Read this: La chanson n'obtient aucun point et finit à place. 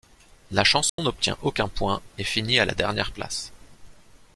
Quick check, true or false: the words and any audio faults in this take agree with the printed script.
false